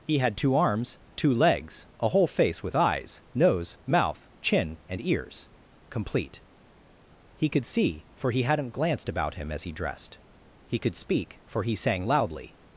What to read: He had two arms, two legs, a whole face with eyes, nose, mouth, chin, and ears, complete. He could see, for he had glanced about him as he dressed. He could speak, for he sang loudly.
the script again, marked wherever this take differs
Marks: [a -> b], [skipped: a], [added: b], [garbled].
He had two arms, two legs, a whole face with eyes, nose, mouth, chin, and ears, complete. He could see, for he [had -> hadn't] glanced about him as he dressed. He could speak, for he sang loudly.